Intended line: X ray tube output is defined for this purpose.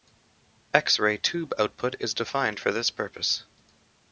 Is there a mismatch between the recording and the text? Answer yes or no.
no